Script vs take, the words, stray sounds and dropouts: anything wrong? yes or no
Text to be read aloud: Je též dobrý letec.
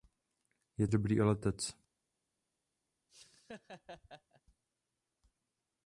yes